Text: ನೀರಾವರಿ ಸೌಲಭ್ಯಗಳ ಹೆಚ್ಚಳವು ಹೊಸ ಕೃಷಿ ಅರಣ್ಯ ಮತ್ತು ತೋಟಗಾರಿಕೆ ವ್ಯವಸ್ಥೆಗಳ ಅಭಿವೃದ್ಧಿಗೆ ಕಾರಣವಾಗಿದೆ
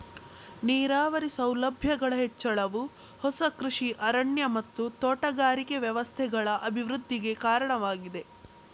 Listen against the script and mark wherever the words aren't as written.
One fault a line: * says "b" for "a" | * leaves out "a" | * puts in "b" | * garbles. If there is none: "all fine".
all fine